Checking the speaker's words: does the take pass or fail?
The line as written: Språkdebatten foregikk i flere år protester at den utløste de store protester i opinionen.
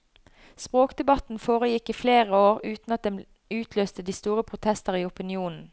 fail